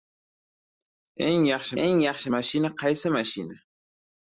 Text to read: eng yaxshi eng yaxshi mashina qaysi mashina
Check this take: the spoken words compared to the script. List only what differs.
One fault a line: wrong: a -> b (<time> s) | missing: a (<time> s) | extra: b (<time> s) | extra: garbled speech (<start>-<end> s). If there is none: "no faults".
no faults